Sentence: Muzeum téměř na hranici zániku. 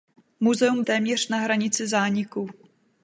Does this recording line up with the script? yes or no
yes